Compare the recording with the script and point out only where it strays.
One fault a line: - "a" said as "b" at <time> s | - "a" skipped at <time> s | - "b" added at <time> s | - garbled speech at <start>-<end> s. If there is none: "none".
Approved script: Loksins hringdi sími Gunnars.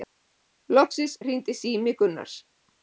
none